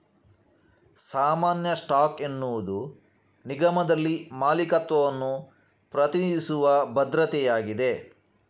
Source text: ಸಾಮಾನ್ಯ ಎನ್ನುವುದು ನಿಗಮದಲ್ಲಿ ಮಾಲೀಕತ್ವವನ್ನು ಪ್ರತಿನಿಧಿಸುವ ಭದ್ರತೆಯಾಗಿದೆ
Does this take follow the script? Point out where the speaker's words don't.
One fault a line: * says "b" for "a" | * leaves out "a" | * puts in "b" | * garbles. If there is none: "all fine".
* puts in "ಸ್ಟಾಕ್"